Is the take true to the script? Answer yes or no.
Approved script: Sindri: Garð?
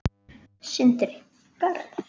yes